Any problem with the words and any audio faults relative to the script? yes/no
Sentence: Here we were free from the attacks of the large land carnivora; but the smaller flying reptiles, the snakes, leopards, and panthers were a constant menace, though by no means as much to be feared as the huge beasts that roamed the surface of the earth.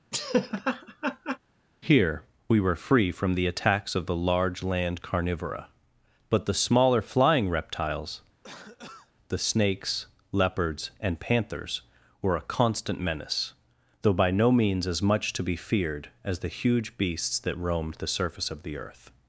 yes